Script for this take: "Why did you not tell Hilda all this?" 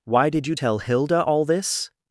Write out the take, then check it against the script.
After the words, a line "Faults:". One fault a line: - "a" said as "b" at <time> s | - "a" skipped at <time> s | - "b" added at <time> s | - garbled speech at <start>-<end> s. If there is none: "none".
"Why did you tell Hilda all this?"
Faults:
- "not" skipped at 0.6 s